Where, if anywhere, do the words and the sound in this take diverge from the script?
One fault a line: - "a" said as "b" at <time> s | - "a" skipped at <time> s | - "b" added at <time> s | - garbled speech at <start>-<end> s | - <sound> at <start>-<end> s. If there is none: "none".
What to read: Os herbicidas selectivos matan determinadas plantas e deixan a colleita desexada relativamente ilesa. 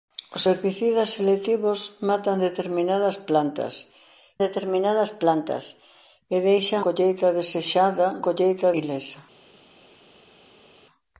- "determinadas plantas" added at 4.5 s
- "a" skipped at 6.8 s
- "relativamente" said as "colleita" at 8.2 s